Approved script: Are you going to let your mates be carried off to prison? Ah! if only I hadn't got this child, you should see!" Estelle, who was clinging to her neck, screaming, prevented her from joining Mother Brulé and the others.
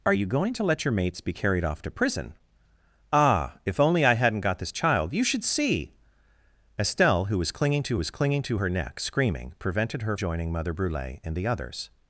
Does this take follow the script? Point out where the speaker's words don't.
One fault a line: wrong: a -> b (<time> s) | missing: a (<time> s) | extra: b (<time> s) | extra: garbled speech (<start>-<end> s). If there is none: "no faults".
extra: was clinging to (8.0 s)
missing: from (10.2 s)